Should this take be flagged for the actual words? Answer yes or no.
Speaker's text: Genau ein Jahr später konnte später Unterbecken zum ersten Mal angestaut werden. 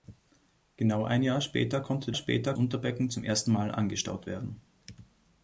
no